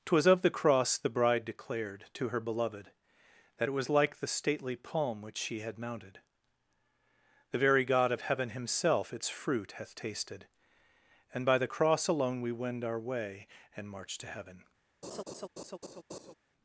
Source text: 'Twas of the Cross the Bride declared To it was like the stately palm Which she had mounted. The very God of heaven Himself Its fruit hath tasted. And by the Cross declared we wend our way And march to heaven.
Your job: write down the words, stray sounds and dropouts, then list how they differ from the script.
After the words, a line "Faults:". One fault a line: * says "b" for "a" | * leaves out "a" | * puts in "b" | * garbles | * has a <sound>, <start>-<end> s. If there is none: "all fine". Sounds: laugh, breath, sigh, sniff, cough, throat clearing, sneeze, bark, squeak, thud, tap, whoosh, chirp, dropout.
'Twas of the Cross the Bride declared To her Beloved That it was like the stately palm Which she had mounted. The very God of heaven Himself Its fruit hath tasted. And by the Cross alone we wend our way And march to heaven.
Faults:
* puts in "her Beloved That"
* says "alone" for "declared"
* has a laugh, 15.0-16.3 s